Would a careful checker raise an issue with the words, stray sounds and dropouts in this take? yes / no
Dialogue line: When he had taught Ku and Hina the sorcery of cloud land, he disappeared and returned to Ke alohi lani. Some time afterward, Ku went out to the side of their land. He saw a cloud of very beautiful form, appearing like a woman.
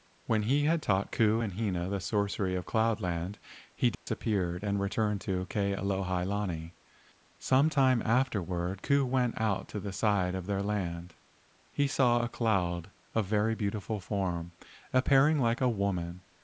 yes